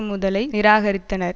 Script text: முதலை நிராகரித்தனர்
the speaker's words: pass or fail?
pass